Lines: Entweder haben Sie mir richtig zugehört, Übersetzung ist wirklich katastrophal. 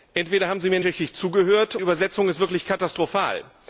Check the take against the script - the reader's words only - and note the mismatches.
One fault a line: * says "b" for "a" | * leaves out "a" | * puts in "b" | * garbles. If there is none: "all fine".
all fine